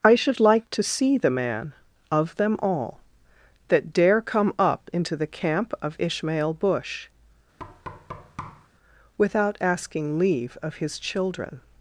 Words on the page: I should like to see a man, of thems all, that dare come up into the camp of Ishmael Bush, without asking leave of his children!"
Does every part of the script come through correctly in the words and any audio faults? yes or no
no